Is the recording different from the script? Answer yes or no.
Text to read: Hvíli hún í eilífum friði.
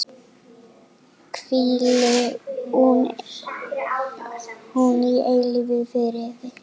no